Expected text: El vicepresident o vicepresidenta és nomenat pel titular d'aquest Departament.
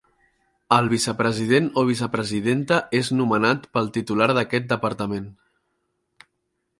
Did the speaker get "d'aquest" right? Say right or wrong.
right